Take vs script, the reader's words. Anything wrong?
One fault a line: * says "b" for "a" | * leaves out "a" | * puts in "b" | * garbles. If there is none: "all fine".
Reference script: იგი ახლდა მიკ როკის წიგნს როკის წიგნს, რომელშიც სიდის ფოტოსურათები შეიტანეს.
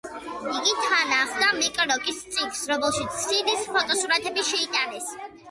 * puts in "თან"
* leaves out "როკის წიგნს"